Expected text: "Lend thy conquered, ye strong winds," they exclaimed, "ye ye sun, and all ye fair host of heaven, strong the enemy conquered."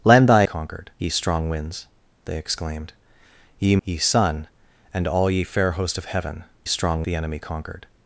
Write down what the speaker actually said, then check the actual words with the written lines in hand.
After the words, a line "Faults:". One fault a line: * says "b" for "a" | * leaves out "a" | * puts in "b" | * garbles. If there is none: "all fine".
"Lend thy conquered, ye strong winds," they exclaimed, "ye ye sun, and all ye fair host of heaven, strong the enemy conquered."
Faults:
all fine